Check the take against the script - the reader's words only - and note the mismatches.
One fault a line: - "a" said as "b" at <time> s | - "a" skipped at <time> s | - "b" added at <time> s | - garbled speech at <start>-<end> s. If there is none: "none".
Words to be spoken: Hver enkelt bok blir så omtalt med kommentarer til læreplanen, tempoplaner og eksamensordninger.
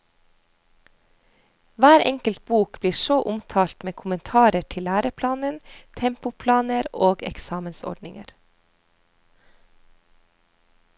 none